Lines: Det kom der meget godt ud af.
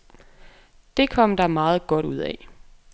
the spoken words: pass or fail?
pass